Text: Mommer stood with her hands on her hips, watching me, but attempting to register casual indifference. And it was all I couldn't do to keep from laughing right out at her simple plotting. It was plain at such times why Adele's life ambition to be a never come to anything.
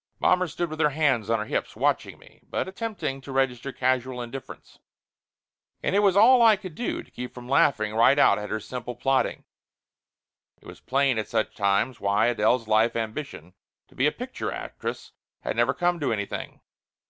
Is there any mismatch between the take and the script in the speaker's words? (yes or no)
yes